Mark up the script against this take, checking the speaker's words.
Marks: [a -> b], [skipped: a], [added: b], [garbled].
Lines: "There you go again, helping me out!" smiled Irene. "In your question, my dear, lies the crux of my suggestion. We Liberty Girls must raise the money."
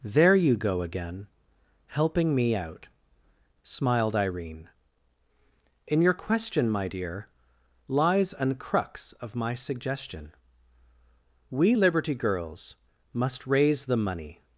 "There you go again, helping me out!" smiled Irene. "In your question, my dear, lies [the -> an] crux of my suggestion. We Liberty Girls must raise the money."